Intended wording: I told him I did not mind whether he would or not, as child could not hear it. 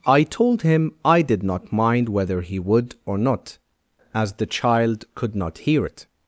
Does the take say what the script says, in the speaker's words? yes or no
no